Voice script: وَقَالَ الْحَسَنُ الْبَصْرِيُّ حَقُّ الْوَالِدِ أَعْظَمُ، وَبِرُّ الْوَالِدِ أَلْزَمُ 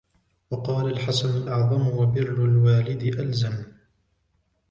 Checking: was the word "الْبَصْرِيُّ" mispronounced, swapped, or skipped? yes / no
yes